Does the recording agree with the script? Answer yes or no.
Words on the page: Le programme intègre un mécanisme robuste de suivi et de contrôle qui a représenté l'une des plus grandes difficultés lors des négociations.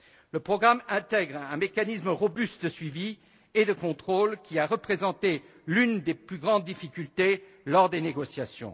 yes